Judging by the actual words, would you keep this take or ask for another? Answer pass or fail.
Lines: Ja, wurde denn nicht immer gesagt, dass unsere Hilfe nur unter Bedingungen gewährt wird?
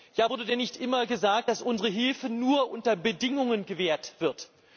pass